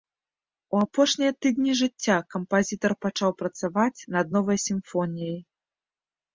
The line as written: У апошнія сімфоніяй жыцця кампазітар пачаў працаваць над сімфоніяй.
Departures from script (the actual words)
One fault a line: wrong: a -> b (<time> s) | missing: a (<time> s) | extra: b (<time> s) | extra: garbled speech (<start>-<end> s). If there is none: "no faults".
wrong: сімфоніяй -> тыдні (1.4 s)
extra: новай (4.4 s)